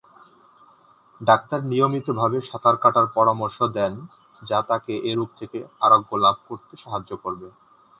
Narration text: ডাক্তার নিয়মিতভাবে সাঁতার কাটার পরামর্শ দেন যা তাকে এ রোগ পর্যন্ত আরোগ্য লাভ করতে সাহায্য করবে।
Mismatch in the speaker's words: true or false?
true